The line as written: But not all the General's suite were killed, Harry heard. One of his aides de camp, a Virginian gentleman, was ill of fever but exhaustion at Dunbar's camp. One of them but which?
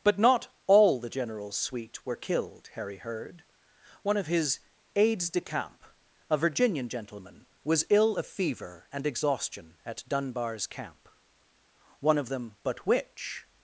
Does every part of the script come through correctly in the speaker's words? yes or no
no